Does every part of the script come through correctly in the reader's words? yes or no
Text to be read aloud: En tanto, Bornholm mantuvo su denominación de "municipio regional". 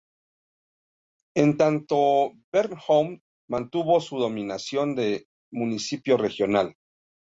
yes